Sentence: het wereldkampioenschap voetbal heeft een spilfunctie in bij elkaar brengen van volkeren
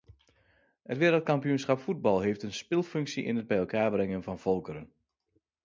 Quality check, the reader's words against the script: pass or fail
fail